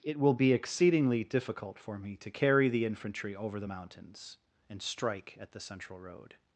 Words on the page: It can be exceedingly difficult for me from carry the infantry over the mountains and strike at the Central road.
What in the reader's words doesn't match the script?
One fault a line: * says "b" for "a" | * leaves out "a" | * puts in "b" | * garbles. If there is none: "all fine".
* says "will" for "can"
* says "to" for "from"